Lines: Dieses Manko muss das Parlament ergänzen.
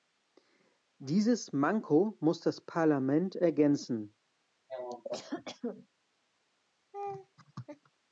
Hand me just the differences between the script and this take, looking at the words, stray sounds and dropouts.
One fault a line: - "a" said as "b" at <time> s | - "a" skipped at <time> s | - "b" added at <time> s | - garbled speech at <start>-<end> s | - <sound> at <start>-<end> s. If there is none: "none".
- cough at 4.7-5.9 s
- laugh at 6.9-7.9 s